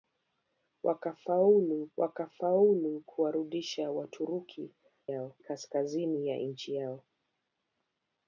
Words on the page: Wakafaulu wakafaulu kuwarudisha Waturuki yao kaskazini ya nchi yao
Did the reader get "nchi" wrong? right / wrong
right